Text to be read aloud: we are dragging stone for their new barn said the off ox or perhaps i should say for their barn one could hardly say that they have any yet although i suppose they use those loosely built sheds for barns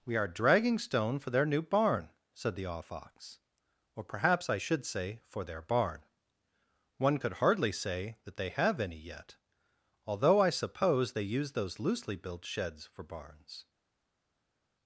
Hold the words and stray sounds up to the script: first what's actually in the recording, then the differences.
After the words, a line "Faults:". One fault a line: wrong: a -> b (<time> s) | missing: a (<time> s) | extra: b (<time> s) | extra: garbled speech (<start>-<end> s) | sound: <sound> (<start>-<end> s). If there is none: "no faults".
we are dragging stone for their new barn said the off ox or perhaps i should say for their barn one could hardly say that they have any yet although i suppose they use those loosely built sheds for barns
Faults:
no faults